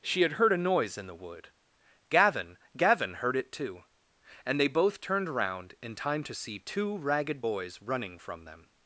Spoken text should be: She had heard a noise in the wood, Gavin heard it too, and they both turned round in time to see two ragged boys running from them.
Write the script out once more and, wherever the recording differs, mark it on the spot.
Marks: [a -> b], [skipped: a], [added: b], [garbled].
She had heard a noise in the wood, Gavin [added: Gavin] heard it too, and they both turned round in time to see two ragged boys running from them.